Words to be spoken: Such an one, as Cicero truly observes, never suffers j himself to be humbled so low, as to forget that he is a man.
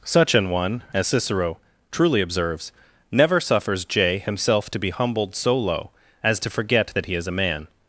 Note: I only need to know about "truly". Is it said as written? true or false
true